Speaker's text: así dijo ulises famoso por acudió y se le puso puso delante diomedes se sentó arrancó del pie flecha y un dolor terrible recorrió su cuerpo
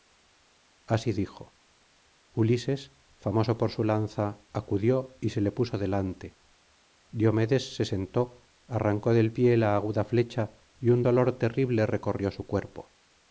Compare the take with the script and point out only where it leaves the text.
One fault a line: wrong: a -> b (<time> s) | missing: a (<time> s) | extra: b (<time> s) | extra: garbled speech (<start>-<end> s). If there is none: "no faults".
extra: su lanza (3.7 s)
missing: puso (5.8 s)
extra: la aguda (9.6 s)